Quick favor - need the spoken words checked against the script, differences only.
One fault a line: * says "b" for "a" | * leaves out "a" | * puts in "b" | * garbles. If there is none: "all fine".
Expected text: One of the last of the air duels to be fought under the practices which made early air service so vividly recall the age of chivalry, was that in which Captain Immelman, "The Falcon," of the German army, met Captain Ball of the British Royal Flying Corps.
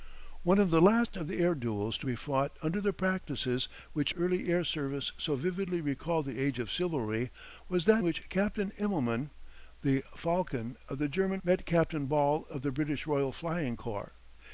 * leaves out "made"
* leaves out "in"
* leaves out "army"